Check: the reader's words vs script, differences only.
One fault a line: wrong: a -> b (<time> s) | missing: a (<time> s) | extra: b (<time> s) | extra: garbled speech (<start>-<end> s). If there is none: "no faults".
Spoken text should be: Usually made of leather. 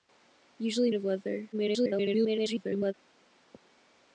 missing: made (0.9 s)
extra: garbled speech (1.5-2.9 s)